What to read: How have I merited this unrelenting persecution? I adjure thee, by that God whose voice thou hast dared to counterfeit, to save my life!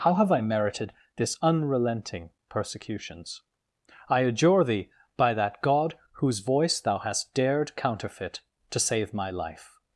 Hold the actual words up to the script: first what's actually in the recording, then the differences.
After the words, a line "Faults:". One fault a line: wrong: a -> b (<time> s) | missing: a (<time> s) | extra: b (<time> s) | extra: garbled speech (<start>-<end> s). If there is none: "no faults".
How have I merited this unrelenting persecutions? I adjure thee, by that God whose voice thou hast dared counterfeit, to save my life!
Faults:
wrong: persecution -> persecutions (2.5 s)
missing: to (7.7 s)